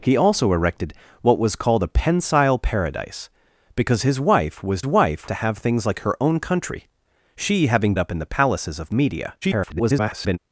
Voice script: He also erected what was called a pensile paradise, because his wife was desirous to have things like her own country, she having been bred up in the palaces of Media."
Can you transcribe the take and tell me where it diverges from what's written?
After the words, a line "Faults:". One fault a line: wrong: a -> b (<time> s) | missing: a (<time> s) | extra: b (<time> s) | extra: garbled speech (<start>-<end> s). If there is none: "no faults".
He also erected what was called a pensile paradise, because his wife was wife to have things like her own country, she having up in the palaces of Media." [garbled]
Faults:
wrong: desirous -> wife (4.9 s)
missing: been bred (7.9 s)
extra: garbled speech (9.4-10.4 s)